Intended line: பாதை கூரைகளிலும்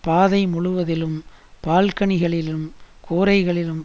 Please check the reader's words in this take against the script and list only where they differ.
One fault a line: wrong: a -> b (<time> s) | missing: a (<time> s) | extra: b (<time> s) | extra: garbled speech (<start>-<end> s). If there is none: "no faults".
extra: முழுவதிலும் பால்கனிகளிலும் (0.5 s)